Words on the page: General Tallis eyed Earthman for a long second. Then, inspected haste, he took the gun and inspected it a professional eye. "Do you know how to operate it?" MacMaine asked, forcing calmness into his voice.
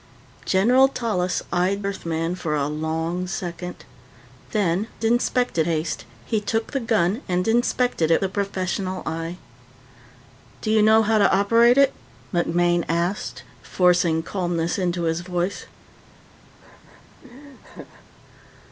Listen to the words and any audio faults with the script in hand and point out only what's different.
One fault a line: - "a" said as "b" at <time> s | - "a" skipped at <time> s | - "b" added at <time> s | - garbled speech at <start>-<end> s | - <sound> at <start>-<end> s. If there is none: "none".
- laugh at 16.6-18.0 s